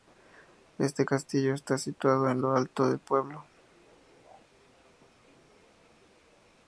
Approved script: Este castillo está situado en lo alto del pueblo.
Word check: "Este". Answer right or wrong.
right